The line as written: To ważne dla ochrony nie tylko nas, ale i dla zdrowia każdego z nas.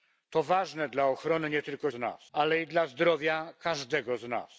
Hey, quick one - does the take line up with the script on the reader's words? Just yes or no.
yes